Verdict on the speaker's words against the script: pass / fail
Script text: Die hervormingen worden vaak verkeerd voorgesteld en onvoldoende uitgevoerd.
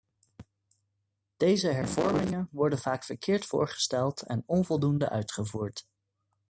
fail